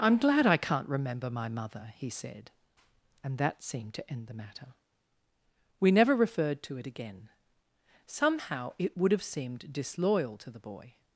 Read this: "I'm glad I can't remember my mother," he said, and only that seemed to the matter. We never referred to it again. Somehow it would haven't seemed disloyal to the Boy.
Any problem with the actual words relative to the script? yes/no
yes